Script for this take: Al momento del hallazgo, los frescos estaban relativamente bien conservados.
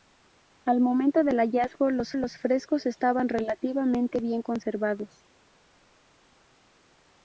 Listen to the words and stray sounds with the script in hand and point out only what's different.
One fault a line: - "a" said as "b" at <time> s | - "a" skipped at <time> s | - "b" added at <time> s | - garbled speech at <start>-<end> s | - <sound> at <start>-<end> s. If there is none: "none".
- "los" added at 2.2 s